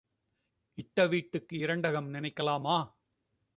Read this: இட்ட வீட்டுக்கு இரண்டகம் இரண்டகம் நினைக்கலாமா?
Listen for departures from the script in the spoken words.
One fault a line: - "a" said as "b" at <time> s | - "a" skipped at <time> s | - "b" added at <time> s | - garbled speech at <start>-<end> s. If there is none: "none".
- "இரண்டகம்" skipped at 2.1 s